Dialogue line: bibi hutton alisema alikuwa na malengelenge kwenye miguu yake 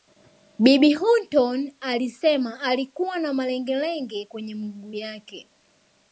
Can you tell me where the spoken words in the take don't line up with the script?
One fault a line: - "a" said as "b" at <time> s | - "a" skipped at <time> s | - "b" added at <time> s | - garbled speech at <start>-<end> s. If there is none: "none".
none